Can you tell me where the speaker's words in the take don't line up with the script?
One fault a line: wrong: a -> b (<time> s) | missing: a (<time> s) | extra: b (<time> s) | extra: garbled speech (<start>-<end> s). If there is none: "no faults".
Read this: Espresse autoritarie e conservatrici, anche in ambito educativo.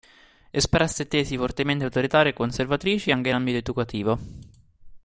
extra: tesi fortemente (1.1 s)